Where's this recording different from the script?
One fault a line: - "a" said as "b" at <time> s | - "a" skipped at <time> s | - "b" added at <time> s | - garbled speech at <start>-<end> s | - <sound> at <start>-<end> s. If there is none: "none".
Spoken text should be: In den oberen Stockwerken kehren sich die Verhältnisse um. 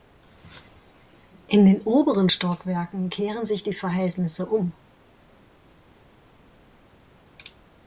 none